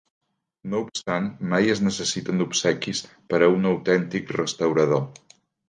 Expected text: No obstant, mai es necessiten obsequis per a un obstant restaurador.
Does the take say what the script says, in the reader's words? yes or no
no